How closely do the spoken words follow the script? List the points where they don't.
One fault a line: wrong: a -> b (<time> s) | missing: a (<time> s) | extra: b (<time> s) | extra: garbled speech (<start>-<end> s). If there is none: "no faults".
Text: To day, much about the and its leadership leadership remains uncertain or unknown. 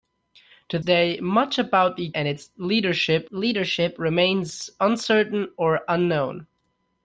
no faults